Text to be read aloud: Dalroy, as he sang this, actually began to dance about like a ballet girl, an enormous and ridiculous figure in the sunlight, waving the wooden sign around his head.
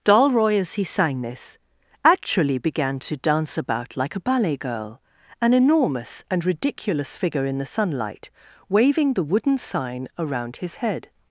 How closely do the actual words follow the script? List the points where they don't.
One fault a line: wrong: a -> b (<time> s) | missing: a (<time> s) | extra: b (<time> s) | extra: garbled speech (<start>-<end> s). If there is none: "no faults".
no faults